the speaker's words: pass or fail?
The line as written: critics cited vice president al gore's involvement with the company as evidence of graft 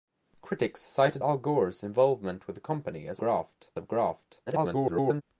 fail